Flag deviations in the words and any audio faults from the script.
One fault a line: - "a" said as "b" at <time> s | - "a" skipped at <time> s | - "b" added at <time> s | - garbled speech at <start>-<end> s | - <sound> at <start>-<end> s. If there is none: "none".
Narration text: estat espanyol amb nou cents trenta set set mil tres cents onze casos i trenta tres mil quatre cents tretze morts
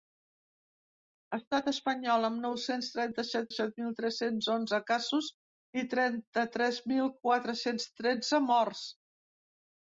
none